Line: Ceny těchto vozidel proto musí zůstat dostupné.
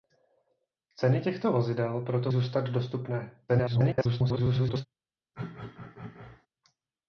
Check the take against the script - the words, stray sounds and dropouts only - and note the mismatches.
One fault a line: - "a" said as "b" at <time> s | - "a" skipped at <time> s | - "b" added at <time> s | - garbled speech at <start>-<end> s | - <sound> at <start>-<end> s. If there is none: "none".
- "musí" skipped at 2.3 s
- garbled speech at 3.5-4.9 s
- throat clearing at 5.3-6.5 s